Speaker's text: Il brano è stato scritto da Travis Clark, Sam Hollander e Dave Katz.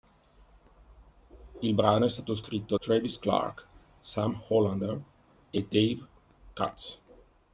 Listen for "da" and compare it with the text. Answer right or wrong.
wrong